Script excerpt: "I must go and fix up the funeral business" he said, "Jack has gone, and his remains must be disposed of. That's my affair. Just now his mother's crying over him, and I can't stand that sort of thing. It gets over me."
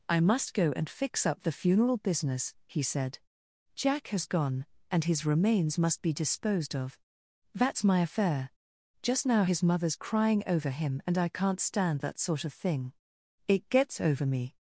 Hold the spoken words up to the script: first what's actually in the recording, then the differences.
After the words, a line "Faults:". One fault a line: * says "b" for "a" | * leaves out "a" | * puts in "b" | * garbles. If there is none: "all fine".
"I must go and fix up the funeral business" he said, "Jack has gone, and his remains must be disposed of. That's my affair. Just now his mother's crying over him, and I can't stand that sort of thing. It gets over me."
Faults:
all fine